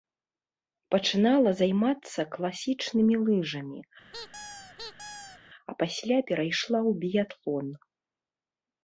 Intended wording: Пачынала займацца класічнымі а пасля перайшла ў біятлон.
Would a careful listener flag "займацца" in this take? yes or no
no